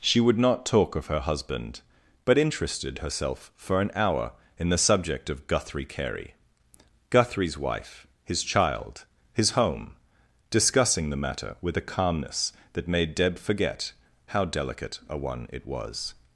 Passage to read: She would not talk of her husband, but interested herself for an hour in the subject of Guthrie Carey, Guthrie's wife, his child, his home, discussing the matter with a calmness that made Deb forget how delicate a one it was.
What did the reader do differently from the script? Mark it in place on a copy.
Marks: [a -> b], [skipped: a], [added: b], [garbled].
She would not talk of her husband, but interested herself for an hour in the subject of Guthrie Carey, Guthrie's wife, his child, his home, discussing the matter with a calmness that made Deb forget how delicate a one it was.